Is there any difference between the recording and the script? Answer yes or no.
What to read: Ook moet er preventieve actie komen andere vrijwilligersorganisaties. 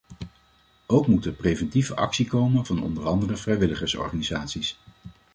yes